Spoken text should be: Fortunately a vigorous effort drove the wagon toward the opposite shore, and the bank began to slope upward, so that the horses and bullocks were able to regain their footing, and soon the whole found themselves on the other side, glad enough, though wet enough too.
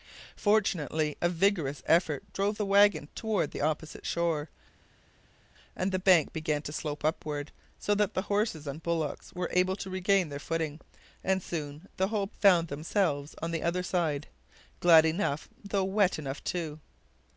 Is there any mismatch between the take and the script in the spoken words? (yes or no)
no